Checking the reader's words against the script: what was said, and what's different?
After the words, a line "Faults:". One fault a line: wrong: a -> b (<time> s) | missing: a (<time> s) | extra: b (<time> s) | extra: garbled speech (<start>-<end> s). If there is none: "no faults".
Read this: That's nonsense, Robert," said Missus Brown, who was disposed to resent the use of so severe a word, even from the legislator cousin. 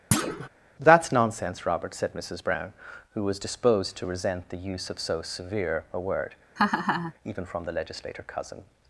That's nonsense, Robert," said Missus Brown, who was disposed to resent the use of so severe a word, even from the legislator cousin.
Faults:
no faults